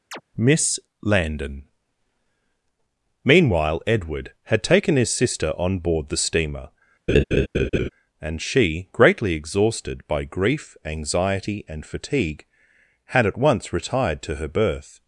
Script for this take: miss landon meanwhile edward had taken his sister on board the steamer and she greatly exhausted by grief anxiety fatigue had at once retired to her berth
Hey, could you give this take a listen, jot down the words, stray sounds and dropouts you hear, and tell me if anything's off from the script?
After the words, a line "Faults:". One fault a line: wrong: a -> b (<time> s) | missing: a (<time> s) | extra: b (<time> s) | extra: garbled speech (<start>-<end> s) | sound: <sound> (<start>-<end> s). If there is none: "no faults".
miss landon meanwhile edward had taken his sister on board the steamer and she greatly exhausted by grief anxiety and fatigue had at once retired to her berth
Faults:
sound: chirp (0.1-0.2 s)
sound: laugh (7.1-7.9 s)
extra: and (11.7 s)